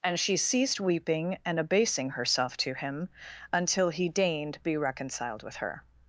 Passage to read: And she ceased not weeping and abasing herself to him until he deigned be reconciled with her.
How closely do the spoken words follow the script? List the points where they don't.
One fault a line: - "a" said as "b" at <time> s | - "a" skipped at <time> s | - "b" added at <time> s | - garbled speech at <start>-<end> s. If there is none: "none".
- "not" skipped at 0.8 s